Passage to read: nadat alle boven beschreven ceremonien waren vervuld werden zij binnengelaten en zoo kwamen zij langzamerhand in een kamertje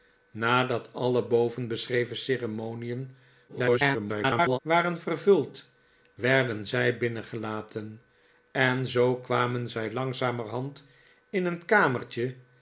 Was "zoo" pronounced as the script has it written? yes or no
yes